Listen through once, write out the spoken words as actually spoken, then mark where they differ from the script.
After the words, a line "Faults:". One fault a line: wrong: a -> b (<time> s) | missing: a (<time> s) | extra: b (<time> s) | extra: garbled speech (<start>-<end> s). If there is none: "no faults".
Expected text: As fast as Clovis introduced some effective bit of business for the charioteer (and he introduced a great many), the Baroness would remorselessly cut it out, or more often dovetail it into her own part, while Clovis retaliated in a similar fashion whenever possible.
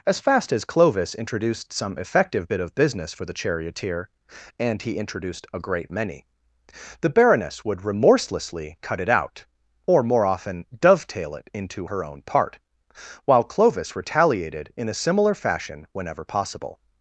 As fast as Clovis introduced some effective bit of business for the charioteer (and he introduced a great many), the Baroness would remorselessly cut it out, or more often dovetail it into her own part, while Clovis retaliated in a similar fashion whenever possible.
Faults:
no faults